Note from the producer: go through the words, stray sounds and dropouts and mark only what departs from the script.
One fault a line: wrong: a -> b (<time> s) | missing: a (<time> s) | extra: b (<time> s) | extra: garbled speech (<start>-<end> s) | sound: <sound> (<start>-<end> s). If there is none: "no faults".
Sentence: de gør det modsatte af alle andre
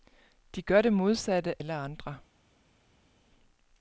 missing: af (1.6 s)